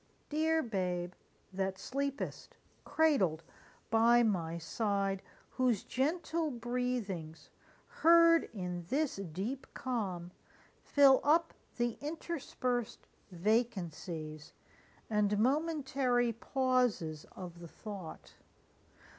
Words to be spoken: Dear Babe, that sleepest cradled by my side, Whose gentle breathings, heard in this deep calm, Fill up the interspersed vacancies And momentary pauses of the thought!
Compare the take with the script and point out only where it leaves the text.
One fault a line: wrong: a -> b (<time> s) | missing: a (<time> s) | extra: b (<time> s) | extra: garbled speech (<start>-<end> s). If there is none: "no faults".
no faults